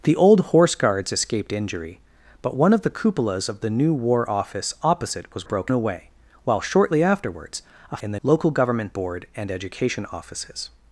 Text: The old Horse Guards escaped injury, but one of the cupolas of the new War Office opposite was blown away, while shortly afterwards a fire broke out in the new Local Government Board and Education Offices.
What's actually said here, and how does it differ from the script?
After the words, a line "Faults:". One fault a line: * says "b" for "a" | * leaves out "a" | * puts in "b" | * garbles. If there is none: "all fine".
The old Horse Guards escaped injury, but one of the cupolas of the new War Office opposite was broke away, while shortly afterwards a in the Local Government Board and Education Offices.
Faults:
* says "broke" for "blown"
* leaves out "fire broke out"
* leaves out "new"